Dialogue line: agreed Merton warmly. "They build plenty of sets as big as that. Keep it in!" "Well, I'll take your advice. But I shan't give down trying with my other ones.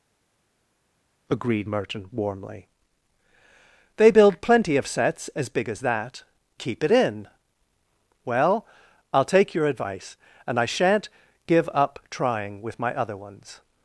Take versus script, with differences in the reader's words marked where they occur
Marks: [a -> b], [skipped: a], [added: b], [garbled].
agreed Merton warmly. "They build plenty of sets as big as that. Keep it in!" "Well, I'll take your advice. [But -> And] I shan't give [down -> up] trying with my other ones.